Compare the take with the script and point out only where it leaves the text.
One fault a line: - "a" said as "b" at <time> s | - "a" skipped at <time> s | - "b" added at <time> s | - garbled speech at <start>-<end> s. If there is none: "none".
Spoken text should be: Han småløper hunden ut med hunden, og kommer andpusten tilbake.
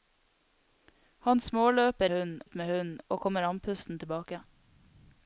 none